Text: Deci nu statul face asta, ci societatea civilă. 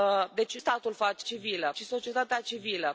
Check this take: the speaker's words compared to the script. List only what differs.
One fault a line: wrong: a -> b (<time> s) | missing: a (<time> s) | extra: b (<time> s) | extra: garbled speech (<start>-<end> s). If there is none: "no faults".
missing: nu (0.6 s)
wrong: asta -> civilă (1.2 s)